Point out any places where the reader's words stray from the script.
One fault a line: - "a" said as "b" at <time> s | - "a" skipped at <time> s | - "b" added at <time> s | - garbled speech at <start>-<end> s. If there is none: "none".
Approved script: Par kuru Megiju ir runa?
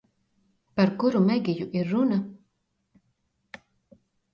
none